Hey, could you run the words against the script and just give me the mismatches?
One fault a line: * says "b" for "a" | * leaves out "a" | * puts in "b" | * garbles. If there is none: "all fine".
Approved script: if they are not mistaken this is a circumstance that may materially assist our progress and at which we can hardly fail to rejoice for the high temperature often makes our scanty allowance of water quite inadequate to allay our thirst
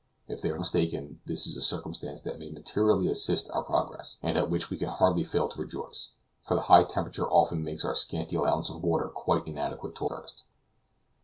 * leaves out "not"
* leaves out "allay our"